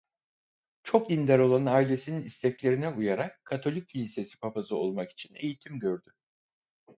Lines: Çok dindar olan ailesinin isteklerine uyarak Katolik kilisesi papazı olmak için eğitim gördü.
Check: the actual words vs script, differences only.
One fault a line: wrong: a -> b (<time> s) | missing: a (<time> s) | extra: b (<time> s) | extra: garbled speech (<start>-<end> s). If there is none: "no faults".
no faults